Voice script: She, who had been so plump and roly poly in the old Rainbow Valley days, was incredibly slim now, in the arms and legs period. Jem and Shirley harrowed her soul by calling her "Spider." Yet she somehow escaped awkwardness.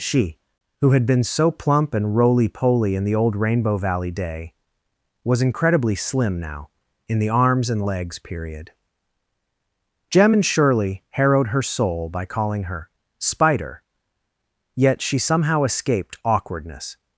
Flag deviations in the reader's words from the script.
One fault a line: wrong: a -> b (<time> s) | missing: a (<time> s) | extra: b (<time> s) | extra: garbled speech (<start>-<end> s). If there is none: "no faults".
wrong: days -> day (4.1 s)